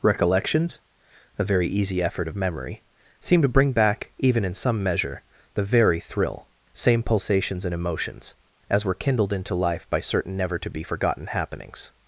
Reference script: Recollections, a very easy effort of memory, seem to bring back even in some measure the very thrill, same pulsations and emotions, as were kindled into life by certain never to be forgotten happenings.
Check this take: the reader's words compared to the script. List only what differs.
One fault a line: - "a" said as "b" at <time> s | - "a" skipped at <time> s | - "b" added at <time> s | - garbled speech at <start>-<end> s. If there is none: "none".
none